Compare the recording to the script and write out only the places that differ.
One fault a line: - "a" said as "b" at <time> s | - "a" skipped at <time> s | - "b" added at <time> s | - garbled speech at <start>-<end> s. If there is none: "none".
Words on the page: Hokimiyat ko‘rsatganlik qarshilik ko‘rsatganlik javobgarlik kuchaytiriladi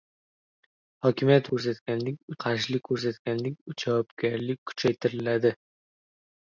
none